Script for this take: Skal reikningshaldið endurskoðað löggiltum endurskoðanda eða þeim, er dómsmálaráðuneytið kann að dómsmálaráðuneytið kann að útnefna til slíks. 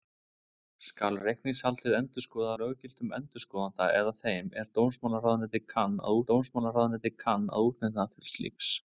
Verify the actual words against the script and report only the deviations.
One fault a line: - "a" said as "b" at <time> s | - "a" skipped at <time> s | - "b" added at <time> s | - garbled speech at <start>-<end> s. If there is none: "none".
none